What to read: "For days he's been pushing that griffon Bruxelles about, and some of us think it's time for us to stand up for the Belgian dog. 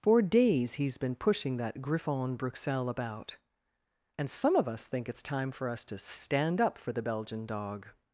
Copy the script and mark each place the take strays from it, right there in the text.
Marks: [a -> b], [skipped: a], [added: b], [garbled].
"For days he's been pushing that griffon Bruxelles about, and some of us think it's time for us to stand up for the Belgian dog.